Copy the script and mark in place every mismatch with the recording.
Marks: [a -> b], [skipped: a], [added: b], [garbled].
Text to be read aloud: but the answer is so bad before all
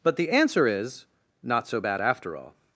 but the answer is [added: not] so bad [before -> after] all